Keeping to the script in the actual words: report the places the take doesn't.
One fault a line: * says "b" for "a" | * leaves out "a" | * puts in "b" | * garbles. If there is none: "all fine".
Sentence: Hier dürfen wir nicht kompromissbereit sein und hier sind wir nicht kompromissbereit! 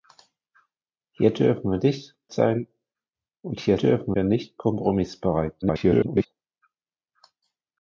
* leaves out "kompromissbereit"
* says "dürfen" for "sind"
* garbles